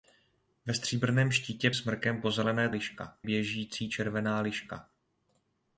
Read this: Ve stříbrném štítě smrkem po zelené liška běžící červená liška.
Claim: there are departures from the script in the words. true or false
false